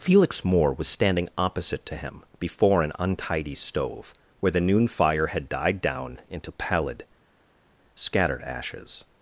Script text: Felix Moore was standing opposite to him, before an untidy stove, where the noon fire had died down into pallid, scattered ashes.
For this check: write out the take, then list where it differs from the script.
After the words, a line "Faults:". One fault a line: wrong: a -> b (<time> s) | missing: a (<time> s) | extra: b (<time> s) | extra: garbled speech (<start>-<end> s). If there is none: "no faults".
Felix Moore was standing opposite to him, before an untidy stove, where the noon fire had died down into pallid, scattered ashes.
Faults:
no faults